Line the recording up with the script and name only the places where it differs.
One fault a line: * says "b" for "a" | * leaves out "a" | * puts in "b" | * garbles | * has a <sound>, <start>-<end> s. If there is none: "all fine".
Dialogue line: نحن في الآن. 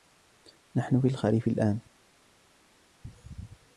* puts in "الخريف"